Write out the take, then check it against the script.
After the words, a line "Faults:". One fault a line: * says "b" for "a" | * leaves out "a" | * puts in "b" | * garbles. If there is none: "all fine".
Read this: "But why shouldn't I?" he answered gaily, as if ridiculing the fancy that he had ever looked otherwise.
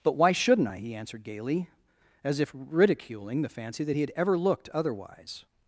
"But why shouldn't I?" he answered gaily, as if ridiculing the fancy that he had ever looked otherwise.
Faults:
all fine